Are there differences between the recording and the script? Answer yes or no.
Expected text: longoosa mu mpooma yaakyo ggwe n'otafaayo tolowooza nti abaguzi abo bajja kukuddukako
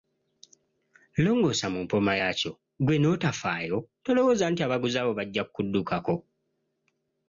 no